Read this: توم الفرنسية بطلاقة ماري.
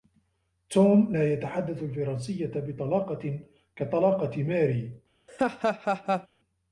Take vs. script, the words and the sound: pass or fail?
fail